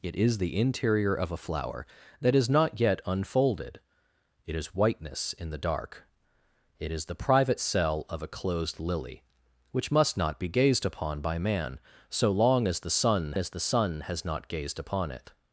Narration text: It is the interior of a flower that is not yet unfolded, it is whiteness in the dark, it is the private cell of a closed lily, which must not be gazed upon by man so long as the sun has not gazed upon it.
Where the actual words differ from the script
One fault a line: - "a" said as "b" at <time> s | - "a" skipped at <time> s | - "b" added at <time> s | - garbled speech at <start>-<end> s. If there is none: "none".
- "as the sun" added at 13.4 s